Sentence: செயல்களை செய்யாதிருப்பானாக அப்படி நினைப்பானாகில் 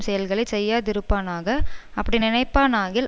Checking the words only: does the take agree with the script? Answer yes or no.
yes